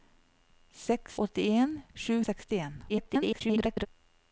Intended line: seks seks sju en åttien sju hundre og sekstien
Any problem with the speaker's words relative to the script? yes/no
yes